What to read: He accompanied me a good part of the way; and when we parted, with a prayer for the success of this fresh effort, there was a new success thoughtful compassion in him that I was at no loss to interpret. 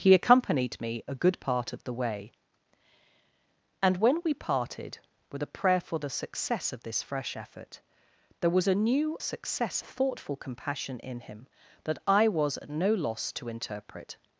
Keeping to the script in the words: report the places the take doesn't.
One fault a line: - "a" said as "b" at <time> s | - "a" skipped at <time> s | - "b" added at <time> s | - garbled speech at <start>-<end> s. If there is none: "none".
none